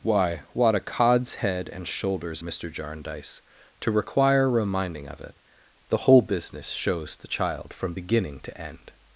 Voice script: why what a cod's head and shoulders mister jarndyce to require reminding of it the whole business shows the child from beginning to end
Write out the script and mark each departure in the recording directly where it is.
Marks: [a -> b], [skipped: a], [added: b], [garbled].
why what a cod's head and shoulders mister jarndyce to require reminding of it the whole business shows the child from beginning to end